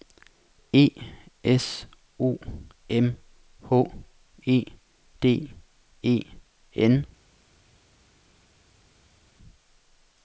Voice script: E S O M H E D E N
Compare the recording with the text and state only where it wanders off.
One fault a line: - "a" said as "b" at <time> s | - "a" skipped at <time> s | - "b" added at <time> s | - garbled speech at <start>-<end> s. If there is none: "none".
none